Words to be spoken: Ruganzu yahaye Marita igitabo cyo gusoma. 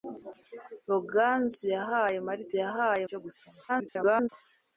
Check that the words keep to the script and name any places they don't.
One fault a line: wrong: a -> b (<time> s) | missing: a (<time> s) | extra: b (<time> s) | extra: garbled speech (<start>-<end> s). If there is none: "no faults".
wrong: igitabo -> yahaye (2.6 s)
extra: garbled speech (3.7-4.3 s)